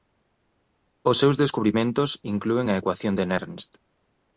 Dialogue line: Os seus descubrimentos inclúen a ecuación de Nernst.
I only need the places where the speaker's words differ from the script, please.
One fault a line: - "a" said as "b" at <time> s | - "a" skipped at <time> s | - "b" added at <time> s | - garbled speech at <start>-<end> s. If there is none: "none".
none